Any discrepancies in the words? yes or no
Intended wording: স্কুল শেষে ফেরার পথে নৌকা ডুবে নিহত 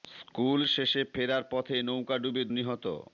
no